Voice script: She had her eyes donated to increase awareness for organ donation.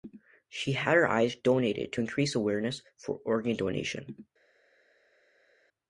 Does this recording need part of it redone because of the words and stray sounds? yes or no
no